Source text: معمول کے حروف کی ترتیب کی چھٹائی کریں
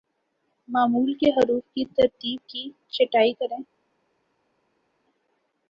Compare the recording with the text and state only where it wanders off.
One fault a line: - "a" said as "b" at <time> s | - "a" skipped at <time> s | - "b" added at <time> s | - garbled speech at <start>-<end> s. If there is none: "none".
none